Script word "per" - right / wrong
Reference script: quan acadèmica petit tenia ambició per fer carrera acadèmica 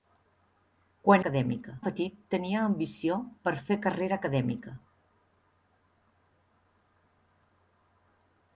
right